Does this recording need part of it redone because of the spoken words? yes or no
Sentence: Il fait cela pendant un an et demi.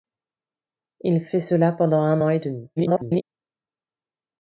yes